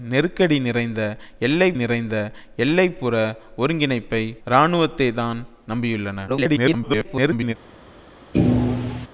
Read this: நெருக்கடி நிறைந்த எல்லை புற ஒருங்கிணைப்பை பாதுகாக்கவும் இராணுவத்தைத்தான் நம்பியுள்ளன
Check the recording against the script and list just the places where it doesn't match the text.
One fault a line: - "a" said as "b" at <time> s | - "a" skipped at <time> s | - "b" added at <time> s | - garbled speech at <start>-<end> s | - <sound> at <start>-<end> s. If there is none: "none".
- "நிறைந்த எல்லை" added at 1.7 s
- "பாதுகாக்கவும்" skipped at 4.2 s
- garbled speech at 6.3-7.5 s
- thud at 8.3-9.1 s